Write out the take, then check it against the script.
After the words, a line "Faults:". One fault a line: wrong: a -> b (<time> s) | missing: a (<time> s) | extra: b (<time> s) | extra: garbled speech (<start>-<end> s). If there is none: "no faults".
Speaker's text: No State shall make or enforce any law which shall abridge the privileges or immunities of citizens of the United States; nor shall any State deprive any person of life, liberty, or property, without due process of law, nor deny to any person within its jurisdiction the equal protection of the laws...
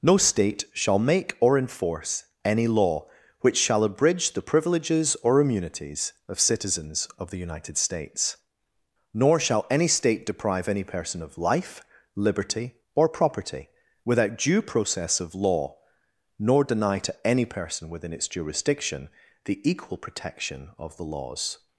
No State shall make or enforce any law which shall abridge the privileges or immunities of citizens of the United States; nor shall any State deprive any person of life, liberty, or property, without due process of law, nor deny to any person within its jurisdiction the equal protection of the laws...
Faults:
no faults